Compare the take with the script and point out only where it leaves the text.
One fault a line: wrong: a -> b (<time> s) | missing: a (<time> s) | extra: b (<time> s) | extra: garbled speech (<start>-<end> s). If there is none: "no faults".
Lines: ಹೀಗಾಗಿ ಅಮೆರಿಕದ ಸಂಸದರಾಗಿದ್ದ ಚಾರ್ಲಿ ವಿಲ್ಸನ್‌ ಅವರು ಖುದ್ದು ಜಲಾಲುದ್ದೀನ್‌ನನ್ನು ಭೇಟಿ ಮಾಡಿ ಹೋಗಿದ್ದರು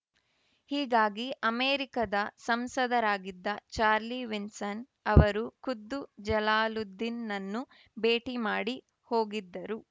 no faults